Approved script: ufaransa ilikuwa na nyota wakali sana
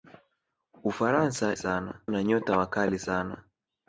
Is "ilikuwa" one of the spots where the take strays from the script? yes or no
yes